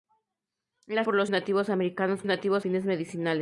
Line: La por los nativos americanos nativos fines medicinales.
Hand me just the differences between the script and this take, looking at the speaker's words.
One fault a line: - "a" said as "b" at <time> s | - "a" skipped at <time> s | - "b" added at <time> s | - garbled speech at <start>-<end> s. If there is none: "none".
none